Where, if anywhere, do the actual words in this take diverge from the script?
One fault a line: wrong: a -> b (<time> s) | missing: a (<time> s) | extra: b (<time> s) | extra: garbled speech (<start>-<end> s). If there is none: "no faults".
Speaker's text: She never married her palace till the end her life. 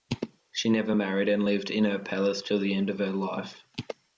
extra: and lived in (1.3 s)
extra: of (2.9 s)